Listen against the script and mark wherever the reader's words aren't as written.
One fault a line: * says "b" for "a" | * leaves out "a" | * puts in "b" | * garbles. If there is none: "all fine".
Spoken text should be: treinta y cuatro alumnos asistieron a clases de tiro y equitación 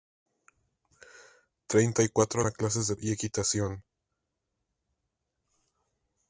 * leaves out "alumnos asistieron"
* leaves out "tiro"